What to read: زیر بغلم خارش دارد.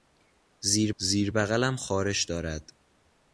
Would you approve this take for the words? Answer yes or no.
no